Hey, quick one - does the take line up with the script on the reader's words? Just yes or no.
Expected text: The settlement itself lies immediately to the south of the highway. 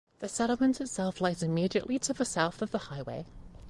yes